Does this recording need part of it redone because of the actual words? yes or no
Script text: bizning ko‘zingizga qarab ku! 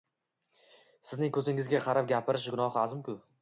yes